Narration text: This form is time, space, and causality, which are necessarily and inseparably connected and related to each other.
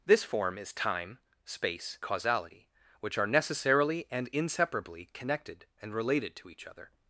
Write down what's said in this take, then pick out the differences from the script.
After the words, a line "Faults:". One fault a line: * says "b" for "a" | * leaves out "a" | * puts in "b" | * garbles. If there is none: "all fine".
This form is time, space, causality, which are necessarily and inseparably connected and related to each other.
Faults:
* leaves out "and"